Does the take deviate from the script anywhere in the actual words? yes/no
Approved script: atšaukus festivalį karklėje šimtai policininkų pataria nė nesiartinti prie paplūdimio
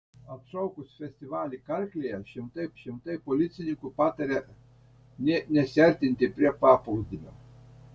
yes